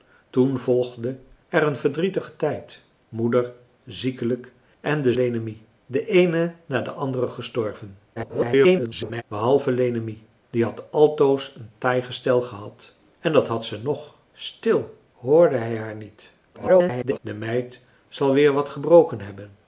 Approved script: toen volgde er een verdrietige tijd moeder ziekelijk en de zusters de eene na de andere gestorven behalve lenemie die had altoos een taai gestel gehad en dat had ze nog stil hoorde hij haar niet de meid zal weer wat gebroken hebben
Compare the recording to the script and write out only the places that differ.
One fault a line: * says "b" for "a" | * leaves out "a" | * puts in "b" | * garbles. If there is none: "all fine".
* says "lenemie" for "zusters"
* garbles
* garbles